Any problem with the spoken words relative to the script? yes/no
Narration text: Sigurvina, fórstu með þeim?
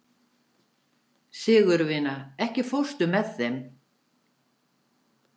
yes